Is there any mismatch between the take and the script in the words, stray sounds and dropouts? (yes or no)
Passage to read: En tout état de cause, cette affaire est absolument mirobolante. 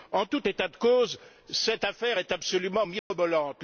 yes